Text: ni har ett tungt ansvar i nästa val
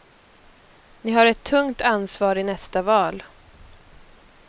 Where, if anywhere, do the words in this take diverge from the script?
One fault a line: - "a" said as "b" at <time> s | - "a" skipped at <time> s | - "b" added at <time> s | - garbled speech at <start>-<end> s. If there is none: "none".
none